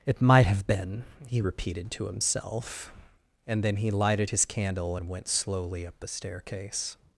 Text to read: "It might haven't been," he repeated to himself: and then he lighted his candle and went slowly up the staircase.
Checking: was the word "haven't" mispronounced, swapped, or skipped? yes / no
yes